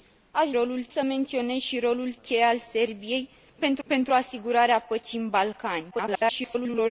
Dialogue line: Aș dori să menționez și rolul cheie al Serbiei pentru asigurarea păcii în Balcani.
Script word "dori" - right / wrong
wrong